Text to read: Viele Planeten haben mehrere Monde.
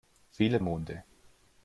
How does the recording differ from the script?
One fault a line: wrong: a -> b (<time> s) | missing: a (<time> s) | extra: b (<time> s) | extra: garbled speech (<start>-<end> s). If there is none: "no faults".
missing: Planeten haben mehrere (0.6 s)